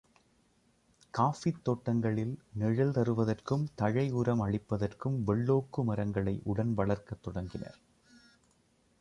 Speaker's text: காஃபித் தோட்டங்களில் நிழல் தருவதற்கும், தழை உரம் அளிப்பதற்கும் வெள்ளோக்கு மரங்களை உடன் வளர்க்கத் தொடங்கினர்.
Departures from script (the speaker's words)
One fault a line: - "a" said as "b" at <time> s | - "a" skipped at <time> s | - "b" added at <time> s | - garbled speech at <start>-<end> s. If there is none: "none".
none